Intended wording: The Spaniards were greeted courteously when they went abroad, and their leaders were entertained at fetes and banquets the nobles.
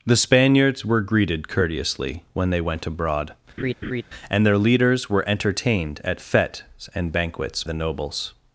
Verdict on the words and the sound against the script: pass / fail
fail